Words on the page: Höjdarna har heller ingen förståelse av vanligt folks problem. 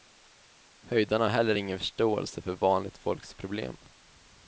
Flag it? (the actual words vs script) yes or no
yes